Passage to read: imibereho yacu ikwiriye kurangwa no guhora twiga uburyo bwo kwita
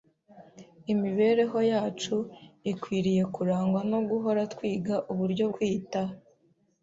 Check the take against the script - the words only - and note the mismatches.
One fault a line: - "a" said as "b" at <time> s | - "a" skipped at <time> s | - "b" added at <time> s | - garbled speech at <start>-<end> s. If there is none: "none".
- "bwo" skipped at 5.5 s